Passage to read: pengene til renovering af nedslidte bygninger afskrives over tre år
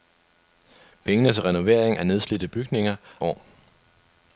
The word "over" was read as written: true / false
false